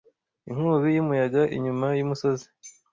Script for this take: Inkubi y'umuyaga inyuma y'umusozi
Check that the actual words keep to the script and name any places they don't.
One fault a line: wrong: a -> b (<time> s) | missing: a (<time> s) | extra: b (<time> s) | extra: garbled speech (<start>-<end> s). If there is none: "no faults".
no faults